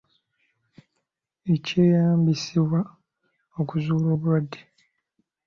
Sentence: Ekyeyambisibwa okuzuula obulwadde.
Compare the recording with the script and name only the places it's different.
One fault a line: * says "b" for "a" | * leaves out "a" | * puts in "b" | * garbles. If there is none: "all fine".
all fine